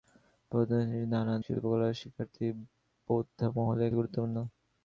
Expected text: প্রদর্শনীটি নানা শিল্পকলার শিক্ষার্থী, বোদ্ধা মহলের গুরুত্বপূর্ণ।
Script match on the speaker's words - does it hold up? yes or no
yes